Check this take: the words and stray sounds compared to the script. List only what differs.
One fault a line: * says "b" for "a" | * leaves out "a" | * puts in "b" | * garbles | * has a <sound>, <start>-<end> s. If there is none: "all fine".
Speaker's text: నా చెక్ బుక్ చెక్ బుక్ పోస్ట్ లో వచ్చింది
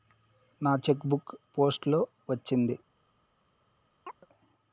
* leaves out "చెక్ బుక్"
* has a chirp, 4.1-4.3 s